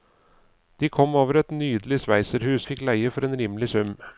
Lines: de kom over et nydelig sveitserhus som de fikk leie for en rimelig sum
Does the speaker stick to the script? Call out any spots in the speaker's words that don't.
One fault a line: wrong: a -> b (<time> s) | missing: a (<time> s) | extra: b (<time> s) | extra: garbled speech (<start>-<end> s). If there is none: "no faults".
missing: som de (2.6 s)